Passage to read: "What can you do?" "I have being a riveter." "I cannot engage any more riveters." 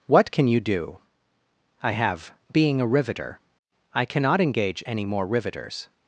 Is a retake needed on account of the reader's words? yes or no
no